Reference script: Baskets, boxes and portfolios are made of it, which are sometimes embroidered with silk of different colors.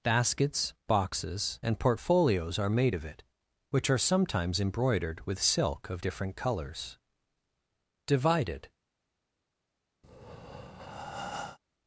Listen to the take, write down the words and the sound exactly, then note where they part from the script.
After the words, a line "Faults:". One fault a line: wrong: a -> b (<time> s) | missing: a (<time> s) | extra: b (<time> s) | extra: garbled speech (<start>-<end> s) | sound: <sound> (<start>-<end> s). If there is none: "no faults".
Baskets, boxes and portfolios are made of it, which are sometimes embroidered with silk of different colors. Divided
Faults:
extra: Divided (8.1 s)
sound: breath (10.0-11.6 s)